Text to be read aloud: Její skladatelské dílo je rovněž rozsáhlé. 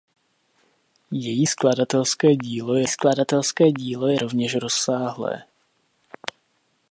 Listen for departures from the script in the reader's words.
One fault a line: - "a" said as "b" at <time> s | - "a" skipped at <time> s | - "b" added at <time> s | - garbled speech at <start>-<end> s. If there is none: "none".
- "skladatelské dílo je" added at 2.9 s